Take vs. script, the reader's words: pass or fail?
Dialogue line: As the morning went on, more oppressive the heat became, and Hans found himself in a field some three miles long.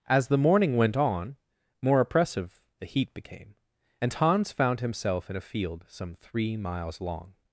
pass